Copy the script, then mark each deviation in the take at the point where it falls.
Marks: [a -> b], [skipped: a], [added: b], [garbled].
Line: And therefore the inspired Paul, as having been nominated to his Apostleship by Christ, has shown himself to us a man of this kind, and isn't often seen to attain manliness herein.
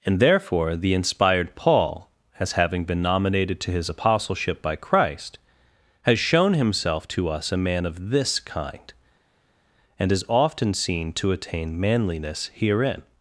And therefore the inspired Paul, as having been nominated to his Apostleship by Christ, has shown himself to us a man of this kind, and [isn't -> is] often seen to attain manliness herein.